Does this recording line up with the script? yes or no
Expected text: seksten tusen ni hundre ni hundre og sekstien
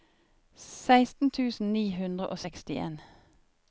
no